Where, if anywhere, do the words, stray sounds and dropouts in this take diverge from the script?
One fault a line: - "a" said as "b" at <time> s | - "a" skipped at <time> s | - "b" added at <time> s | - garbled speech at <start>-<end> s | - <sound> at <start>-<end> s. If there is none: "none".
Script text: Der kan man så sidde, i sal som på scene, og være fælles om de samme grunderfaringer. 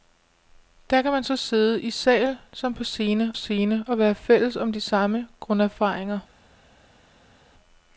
- "scene" added at 3.3 s